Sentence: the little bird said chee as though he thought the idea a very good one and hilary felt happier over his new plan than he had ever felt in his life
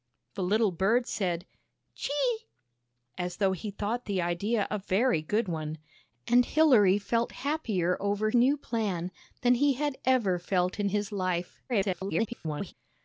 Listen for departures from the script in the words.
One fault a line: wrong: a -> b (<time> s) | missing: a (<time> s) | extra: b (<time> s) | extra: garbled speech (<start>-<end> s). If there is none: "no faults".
missing: his (8.3 s)
extra: garbled speech (11.7-12.7 s)